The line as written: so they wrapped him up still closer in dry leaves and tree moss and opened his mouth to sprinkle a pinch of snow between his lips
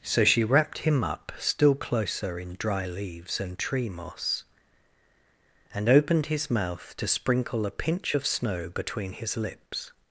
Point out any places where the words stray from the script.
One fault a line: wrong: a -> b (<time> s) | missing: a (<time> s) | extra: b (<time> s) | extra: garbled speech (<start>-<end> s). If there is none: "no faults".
wrong: they -> she (0.2 s)